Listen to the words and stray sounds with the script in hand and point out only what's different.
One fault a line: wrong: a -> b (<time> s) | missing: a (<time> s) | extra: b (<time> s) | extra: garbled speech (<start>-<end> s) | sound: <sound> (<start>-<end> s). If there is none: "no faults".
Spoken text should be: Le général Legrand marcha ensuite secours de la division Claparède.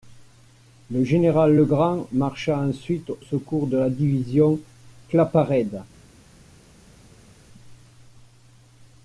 no faults